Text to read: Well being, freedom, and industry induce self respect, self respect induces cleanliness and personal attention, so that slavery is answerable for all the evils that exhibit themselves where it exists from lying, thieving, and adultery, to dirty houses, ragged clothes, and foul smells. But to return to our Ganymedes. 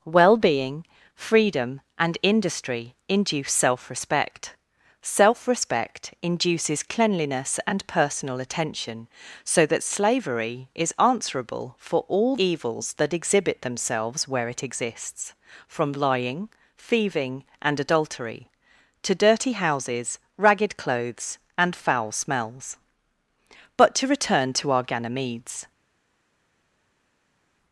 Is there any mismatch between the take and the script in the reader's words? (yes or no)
yes